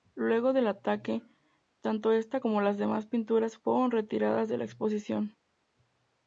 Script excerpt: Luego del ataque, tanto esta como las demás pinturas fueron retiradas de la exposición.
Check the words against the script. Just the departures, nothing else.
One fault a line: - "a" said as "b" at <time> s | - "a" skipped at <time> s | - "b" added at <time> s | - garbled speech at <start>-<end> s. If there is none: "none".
none